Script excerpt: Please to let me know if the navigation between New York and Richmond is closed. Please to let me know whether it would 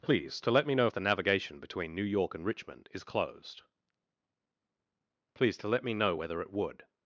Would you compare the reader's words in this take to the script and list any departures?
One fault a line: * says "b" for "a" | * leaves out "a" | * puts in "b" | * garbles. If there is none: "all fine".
all fine